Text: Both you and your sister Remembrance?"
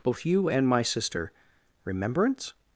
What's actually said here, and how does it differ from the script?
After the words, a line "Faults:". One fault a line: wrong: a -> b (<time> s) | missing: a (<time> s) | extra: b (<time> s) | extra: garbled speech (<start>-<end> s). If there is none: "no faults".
Both you and my sister Remembrance?"
Faults:
wrong: your -> my (0.7 s)